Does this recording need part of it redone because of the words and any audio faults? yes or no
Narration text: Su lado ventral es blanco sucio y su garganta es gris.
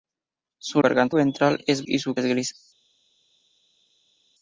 yes